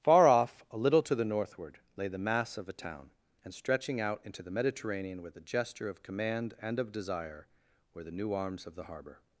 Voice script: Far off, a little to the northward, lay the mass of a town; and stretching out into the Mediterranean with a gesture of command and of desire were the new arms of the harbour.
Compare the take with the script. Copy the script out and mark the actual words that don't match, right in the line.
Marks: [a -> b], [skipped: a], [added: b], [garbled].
Far off, a little to the northward, lay the mass of a town; and stretching out into the Mediterranean with a gesture of command and of desire were the new arms of the harbour.